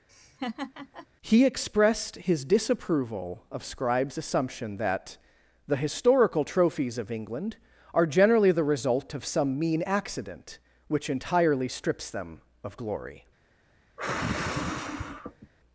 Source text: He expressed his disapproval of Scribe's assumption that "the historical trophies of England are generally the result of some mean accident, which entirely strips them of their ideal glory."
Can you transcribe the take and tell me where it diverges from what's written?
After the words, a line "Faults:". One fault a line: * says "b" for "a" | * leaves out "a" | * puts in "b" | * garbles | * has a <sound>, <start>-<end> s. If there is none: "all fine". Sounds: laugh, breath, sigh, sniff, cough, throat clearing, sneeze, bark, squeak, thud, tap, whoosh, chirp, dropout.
He expressed his disapproval of Scribe's assumption that "the historical trophies of England are generally the result of some mean accident, which entirely strips them of glory."
Faults:
* has a laugh, 0.1-1.1 s
* leaves out "their ideal"
* has a sigh, 14.0-15.5 s